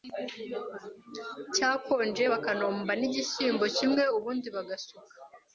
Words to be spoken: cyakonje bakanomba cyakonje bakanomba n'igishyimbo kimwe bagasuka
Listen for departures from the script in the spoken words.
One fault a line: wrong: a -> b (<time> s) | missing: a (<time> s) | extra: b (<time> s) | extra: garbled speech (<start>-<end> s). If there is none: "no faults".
missing: cyakonje bakanomba (2.9 s)
extra: ubundi (4.2 s)